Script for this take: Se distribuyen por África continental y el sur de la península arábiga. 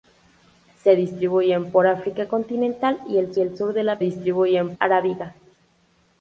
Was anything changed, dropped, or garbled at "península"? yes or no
yes